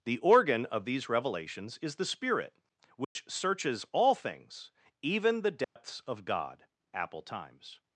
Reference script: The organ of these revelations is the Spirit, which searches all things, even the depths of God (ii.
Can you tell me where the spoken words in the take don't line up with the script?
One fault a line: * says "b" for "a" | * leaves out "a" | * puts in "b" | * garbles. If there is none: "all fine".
* says "apple times" for "ii"